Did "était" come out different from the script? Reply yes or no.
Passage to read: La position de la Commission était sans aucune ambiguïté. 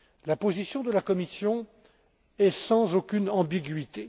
yes